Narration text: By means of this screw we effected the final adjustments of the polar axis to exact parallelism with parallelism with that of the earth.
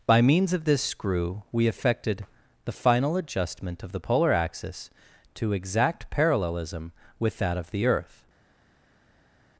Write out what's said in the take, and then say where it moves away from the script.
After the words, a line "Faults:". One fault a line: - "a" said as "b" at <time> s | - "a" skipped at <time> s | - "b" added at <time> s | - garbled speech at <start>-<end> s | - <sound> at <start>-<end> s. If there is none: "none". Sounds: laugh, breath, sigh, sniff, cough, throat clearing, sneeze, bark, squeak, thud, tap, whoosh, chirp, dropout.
By means of this screw we effected the final adjustment of the polar axis to exact parallelism with that of the earth.
Faults:
- "adjustments" said as "adjustment" at 3.2 s
- "parallelism with" skipped at 7.4 s